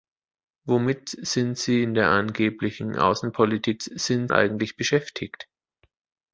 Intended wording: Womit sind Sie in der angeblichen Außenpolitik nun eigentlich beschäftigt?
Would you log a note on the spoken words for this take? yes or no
yes